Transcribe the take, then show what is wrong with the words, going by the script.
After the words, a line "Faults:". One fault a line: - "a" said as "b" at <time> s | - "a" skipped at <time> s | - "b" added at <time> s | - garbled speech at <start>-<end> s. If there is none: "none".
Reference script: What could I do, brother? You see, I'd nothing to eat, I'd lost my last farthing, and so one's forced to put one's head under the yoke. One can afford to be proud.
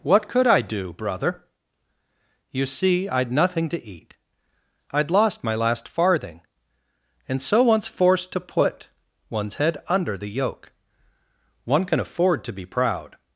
What could I do, brother? You see, I'd nothing to eat, I'd lost my last farthing, and so one's forced to put one's head under the yoke. One can afford to be proud.
Faults:
none